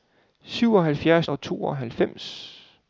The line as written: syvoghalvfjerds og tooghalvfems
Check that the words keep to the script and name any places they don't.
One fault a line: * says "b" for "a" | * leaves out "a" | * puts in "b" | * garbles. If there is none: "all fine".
all fine